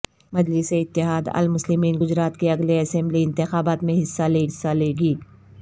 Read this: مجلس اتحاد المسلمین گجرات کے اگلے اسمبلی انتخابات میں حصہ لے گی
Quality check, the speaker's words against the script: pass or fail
fail